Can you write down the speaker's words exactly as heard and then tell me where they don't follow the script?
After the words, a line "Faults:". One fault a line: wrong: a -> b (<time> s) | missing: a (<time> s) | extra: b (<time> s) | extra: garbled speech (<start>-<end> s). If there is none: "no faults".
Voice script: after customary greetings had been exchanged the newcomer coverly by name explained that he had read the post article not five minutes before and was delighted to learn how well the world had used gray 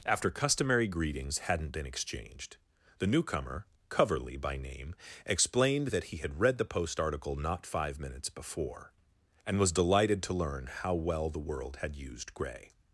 after customary greetings hadn't been exchanged the newcomer coverly by name explained that he had read the post article not five minutes before and was delighted to learn how well the world had used gray
Faults:
wrong: had -> hadn't (1.4 s)